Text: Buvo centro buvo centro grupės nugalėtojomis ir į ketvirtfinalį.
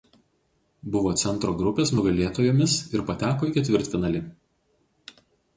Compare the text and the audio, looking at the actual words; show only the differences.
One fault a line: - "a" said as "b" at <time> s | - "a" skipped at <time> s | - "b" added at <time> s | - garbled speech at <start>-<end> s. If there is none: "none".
- "buvo centro" skipped at 1.5 s
- "pateko" added at 3.1 s